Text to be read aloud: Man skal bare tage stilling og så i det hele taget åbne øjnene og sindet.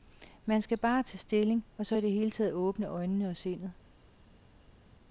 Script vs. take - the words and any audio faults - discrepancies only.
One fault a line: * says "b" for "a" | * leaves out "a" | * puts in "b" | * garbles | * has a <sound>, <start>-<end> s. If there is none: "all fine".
all fine